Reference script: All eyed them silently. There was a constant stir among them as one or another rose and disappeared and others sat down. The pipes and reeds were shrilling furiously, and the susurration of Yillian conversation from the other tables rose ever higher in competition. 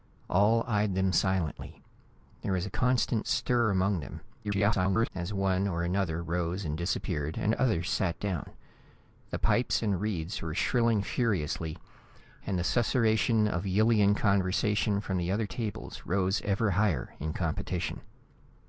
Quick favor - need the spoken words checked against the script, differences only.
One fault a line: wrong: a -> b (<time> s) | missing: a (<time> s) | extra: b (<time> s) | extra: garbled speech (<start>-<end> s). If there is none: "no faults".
extra: garbled speech (4.4-5.1 s)